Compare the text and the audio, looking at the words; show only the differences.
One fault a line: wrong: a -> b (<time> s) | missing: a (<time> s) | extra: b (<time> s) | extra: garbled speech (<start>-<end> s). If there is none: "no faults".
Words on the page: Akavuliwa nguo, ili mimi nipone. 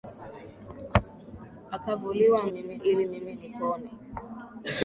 wrong: nguo -> mimi (2.5 s)